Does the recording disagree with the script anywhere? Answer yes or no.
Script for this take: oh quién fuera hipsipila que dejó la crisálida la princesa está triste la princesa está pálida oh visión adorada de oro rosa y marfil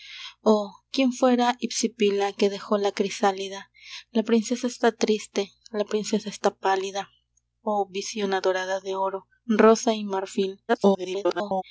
yes